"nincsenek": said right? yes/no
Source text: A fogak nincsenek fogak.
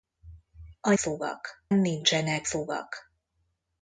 yes